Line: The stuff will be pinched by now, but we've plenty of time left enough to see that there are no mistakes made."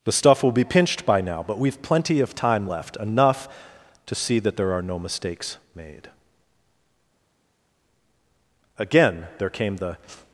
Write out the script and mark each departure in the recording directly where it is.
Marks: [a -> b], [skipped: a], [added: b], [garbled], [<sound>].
The stuff will be pinched by now, but we've plenty of time left enough to see that there are no mistakes made." [added: Again there came the]